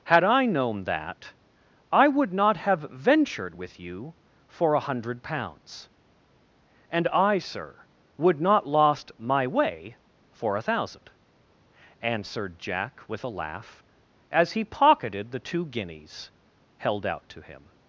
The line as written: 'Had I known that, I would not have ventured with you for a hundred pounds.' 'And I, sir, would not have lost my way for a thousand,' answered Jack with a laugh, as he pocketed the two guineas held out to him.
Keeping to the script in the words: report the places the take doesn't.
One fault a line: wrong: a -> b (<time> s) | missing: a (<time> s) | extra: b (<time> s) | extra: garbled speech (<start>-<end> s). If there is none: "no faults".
missing: have (8.7 s)